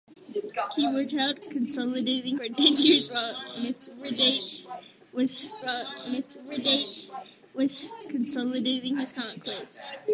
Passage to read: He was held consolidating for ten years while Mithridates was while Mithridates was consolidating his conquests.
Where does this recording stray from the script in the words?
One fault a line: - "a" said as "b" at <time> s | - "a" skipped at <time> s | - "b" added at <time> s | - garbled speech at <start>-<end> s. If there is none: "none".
none